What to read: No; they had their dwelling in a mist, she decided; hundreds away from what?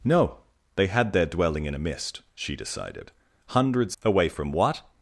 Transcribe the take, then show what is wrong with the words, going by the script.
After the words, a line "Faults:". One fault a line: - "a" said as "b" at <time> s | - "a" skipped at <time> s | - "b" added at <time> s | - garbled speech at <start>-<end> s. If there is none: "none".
No; they had their dwelling in a mist, she decided; hundreds away from what?
Faults:
none